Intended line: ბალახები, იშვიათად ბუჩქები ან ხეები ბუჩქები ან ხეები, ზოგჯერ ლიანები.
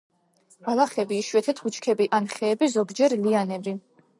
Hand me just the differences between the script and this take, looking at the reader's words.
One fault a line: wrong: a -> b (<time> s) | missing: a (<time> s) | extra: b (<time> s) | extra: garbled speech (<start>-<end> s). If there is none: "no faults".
missing: ბუჩქები ან ხეები (2.7 s)